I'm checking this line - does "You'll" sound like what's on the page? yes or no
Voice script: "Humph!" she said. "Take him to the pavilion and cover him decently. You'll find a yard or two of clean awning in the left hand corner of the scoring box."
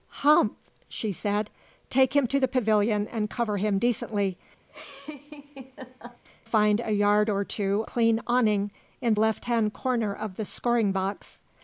no